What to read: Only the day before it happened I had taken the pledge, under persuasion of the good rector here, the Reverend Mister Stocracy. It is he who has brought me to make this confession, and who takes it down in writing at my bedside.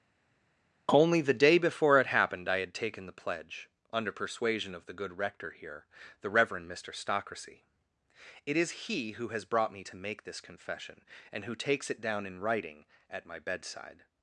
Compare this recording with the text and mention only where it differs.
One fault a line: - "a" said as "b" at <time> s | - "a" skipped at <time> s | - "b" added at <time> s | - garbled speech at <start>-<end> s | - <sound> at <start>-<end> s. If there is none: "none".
none